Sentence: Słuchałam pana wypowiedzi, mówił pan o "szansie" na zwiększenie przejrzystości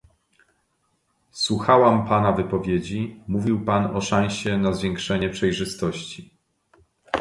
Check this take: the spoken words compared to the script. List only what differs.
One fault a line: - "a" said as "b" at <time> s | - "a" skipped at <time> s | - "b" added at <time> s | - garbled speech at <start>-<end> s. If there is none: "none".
none